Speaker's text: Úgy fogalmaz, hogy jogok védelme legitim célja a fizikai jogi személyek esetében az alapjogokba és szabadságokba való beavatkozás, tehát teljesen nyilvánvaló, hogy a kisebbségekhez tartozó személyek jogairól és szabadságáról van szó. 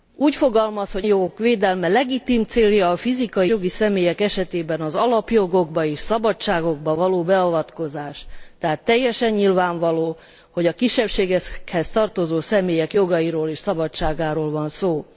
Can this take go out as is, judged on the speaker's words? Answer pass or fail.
pass